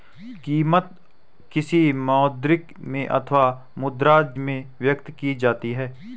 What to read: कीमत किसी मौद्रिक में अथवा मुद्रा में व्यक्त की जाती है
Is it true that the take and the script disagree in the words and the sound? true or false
false